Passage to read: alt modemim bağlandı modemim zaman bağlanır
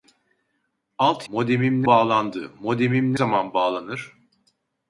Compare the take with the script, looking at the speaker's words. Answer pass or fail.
pass